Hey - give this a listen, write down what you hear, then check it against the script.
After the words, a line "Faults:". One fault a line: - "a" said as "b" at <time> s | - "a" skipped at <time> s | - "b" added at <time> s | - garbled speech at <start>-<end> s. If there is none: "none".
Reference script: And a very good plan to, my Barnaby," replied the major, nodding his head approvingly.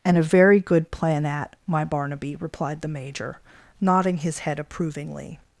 And a very good plan at, my Barnaby," replied the major, nodding his head approvingly.
Faults:
- "to" said as "at" at 1.2 s